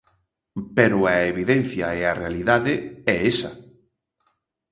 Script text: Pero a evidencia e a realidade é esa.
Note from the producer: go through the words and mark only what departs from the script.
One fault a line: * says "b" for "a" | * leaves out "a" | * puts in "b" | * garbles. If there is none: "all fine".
all fine